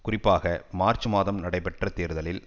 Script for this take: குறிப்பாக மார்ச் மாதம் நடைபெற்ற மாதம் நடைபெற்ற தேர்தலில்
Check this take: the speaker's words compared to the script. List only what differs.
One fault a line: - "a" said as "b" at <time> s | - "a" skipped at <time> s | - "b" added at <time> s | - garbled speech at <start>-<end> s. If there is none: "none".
- "மாதம் நடைபெற்ற" skipped at 1.9 s